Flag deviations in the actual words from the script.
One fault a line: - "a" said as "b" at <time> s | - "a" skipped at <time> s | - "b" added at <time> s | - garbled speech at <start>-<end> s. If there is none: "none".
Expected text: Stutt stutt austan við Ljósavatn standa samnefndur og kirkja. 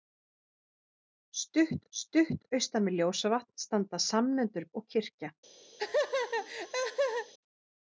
none